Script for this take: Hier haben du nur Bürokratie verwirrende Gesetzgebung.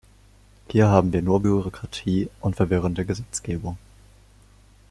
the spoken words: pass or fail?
fail